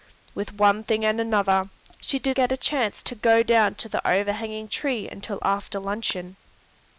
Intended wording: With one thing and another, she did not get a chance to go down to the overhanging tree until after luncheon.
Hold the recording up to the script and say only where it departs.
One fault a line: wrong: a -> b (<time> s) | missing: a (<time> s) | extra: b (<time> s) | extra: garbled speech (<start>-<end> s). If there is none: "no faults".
missing: not (2.4 s)